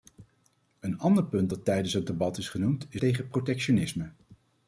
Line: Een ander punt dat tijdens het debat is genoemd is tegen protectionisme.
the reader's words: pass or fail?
pass